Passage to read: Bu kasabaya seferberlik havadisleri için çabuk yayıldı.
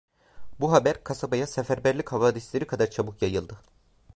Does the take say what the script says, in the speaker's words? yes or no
no